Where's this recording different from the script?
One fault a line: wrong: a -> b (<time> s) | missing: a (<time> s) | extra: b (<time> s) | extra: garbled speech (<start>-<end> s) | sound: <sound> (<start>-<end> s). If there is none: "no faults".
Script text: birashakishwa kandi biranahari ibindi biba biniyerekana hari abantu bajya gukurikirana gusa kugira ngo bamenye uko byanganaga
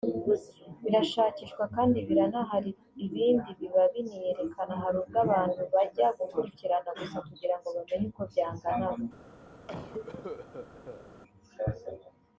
extra: ubwo (5.0 s)
sound: cough (9.7-11.0 s)